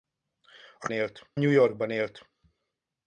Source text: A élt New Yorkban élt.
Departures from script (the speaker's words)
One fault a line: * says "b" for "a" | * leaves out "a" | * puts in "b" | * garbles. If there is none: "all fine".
all fine